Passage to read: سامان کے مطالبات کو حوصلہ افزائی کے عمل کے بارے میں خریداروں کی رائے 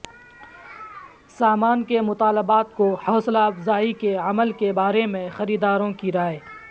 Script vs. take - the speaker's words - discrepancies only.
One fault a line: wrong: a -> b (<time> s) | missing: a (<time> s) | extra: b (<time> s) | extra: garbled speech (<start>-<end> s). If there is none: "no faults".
no faults